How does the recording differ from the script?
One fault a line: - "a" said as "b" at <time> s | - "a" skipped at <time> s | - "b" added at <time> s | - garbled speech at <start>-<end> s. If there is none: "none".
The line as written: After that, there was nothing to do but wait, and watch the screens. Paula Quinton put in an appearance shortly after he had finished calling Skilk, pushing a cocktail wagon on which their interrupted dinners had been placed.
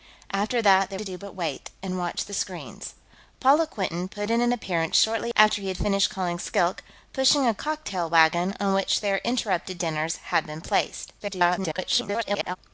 - "was nothing" skipped at 1.0 s
- garbled speech at 11.2-12.6 s